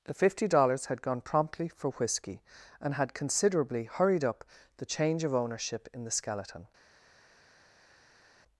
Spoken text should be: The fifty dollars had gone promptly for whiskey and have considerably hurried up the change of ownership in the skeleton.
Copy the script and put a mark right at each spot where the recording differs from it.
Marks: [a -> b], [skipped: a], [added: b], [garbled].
The fifty dollars had gone promptly for whiskey and [have -> had] considerably hurried up the change of ownership in the skeleton.